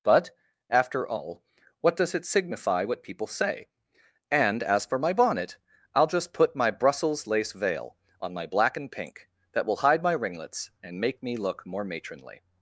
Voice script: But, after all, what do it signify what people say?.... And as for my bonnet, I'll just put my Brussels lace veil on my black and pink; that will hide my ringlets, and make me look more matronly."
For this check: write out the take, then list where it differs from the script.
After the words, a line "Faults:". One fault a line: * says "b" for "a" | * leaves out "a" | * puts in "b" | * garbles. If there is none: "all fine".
But, after all, what does it signify what people say?.... And as for my bonnet, I'll just put my Brussels lace veil on my black and pink; that will hide my ringlets, and make me look more matronly."
Faults:
* says "does" for "do"